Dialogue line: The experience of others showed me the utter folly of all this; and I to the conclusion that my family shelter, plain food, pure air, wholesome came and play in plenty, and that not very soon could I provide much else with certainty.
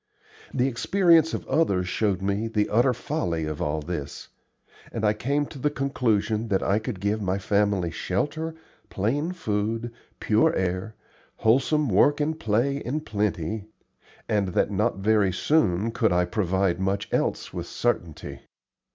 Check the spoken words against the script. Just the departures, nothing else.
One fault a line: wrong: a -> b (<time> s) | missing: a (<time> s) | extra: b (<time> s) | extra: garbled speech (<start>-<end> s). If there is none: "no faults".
extra: came (5.1 s)
extra: I could give (6.6 s)
wrong: came -> work (11.9 s)